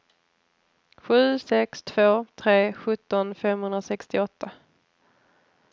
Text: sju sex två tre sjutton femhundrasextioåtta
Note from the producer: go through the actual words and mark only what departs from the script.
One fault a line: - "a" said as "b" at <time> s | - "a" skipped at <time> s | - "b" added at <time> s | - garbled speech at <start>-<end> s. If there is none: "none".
none